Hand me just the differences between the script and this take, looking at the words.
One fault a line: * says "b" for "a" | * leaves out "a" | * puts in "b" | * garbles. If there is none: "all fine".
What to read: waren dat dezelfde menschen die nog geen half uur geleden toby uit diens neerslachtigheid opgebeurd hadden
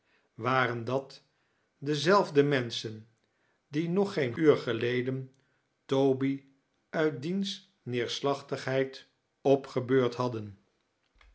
* leaves out "half"